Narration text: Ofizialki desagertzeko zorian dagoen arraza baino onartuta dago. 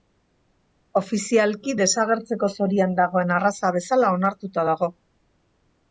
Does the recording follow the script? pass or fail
fail